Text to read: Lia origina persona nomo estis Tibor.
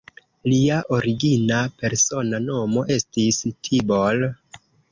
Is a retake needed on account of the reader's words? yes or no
no